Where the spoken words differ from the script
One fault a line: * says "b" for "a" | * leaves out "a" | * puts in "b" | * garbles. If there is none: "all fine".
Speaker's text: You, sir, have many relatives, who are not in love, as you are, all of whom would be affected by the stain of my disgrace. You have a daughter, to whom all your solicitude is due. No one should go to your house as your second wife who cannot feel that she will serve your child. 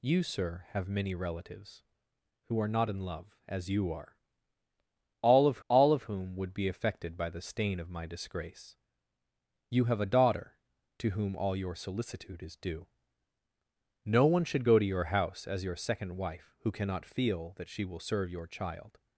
* puts in "all of"